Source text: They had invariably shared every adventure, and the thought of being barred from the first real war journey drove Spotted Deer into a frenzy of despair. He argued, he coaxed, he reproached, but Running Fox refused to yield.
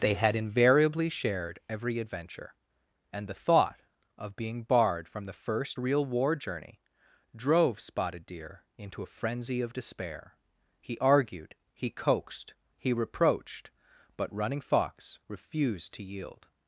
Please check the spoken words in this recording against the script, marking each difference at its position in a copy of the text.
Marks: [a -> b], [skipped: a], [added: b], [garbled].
They had invariably shared every adventure, and the thought of being barred from the first real war journey drove Spotted Deer into a frenzy of despair. He argued, he coaxed, he reproached, but Running Fox refused to yield.